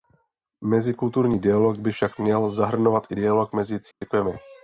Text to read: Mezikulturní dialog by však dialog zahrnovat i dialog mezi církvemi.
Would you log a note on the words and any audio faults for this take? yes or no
yes